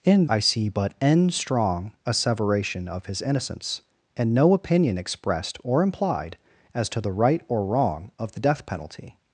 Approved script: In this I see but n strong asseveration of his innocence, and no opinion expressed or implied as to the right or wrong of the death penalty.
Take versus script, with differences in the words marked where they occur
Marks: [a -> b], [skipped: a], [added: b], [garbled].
In [skipped: this] I see but n strong asseveration of his innocence, and no opinion expressed or implied as to the right or wrong of the death penalty.